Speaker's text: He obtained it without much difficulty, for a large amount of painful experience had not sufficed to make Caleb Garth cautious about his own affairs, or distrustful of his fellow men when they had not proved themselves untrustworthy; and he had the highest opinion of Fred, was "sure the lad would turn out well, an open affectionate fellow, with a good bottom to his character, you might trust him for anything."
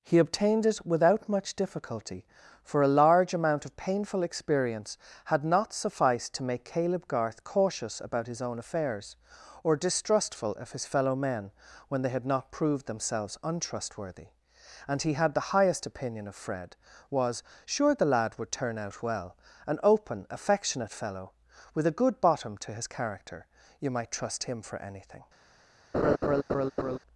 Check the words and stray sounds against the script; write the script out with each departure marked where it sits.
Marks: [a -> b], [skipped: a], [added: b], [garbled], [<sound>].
He obtained it without much difficulty, for a large amount of painful experience had not sufficed to make Caleb Garth cautious about his own affairs, or distrustful of his fellow men when they had not proved themselves untrustworthy; and he had the highest opinion of Fred, was "sure the lad would turn out well, an open affectionate fellow, with a good bottom to his character, you might trust him for anything." [laugh]